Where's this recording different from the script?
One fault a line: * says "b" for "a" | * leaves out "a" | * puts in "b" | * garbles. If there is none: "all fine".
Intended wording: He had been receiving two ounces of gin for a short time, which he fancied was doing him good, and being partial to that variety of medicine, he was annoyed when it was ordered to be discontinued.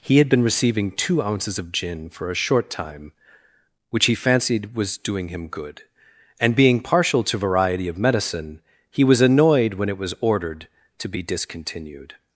* leaves out "that"